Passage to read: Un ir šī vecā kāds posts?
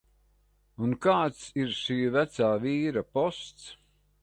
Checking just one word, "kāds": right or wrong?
wrong